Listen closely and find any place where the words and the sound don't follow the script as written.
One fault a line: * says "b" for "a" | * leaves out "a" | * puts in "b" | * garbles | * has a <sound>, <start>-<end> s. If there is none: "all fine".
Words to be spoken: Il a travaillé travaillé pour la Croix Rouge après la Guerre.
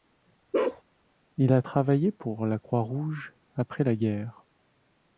* has a bark, 0.5-0.8 s
* leaves out "travaillé"